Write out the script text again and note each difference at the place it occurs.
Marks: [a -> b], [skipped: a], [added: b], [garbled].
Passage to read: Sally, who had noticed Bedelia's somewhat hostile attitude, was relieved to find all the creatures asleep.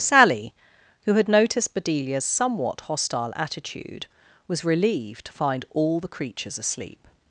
Sally, who had noticed Bedelia's somewhat hostile attitude, was relieved to find all the creatures asleep.